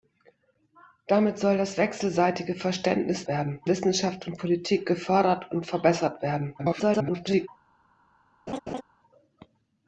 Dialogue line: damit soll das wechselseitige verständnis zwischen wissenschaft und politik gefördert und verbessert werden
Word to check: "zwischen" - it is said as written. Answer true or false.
false